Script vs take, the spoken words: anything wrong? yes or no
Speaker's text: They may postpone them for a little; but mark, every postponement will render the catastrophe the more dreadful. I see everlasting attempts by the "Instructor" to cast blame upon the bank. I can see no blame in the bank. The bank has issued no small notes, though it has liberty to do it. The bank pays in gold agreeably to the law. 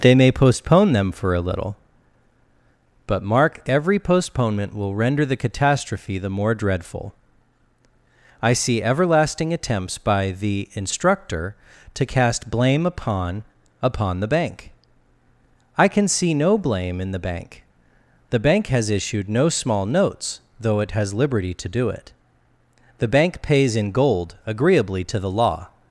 yes